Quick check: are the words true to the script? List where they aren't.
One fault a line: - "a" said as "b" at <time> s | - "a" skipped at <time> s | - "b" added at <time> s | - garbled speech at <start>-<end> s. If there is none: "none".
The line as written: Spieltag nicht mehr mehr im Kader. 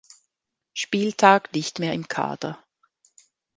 - "mehr" skipped at 1.9 s